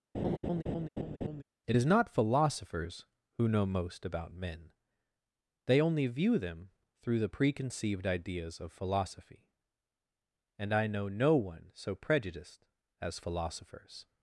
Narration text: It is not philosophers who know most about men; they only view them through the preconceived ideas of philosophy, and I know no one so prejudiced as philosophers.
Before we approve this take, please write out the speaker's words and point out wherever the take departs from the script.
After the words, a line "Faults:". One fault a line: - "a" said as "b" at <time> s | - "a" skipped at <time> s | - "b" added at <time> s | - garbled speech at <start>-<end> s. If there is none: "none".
It is not philosophers who know most about men; they only view them through the preconceived ideas of philosophy, and I know no one so prejudiced as philosophers.
Faults:
none